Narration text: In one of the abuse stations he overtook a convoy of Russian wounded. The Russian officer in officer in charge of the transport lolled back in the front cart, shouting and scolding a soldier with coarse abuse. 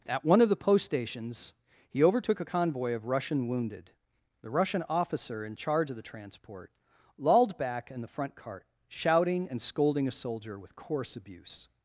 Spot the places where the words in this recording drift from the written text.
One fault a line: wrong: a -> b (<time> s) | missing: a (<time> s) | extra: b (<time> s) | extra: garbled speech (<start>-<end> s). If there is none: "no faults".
wrong: In -> At (0.1 s)
wrong: abuse -> post (0.6 s)
missing: officer in (5.6 s)